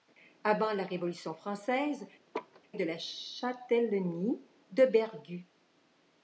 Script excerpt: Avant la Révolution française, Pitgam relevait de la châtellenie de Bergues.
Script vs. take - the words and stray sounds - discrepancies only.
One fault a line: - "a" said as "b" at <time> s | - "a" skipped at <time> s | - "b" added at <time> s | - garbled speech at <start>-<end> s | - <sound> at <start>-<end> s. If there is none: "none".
- "Pitgam relevait" skipped at 2.1 s
- laugh at 2.3-2.6 s